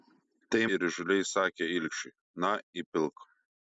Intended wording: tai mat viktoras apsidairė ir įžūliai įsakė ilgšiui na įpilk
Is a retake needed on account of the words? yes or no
yes